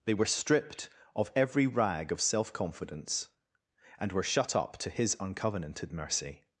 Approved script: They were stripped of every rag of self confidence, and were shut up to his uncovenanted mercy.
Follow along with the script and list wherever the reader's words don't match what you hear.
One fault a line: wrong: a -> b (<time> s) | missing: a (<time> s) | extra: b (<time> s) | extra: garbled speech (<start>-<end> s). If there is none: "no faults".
no faults